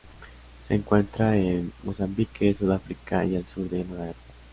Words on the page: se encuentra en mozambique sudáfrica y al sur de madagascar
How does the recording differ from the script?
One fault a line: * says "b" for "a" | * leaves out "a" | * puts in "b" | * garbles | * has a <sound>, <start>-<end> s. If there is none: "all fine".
all fine